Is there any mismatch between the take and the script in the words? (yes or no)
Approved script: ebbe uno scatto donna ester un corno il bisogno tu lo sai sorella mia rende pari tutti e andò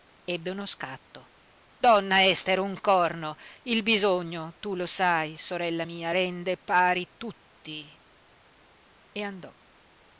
no